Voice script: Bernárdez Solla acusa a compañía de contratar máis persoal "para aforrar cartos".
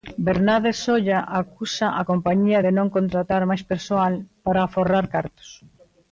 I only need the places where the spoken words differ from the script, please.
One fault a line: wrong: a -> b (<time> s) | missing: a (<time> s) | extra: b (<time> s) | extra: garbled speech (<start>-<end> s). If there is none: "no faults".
extra: non (2.8 s)